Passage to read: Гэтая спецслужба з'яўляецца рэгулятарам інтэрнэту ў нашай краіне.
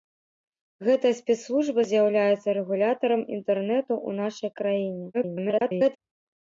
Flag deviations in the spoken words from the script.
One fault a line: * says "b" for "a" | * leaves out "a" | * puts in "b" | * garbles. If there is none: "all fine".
* garbles